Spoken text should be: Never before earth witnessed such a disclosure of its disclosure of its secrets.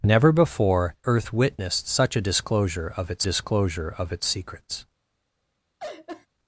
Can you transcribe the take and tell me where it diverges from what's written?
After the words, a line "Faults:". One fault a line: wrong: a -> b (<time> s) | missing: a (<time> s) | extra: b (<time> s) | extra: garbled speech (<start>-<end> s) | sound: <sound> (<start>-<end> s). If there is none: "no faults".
Never before earth witnessed such a disclosure of its disclosure of its secrets.
Faults:
sound: laugh (5.8-6.3 s)